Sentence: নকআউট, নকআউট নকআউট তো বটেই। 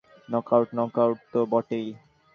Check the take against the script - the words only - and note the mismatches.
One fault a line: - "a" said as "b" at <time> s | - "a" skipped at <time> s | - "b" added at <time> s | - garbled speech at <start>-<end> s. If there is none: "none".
- "নকআউট" skipped at 1.2 s